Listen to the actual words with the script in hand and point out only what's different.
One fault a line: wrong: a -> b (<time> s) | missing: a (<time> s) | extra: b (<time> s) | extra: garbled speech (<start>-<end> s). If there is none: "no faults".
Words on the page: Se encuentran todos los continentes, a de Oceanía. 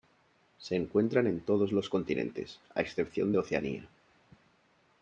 extra: en (1.3 s)
extra: excepción (2.8 s)